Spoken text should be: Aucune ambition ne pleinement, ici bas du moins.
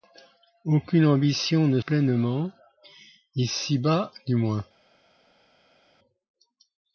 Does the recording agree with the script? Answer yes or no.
yes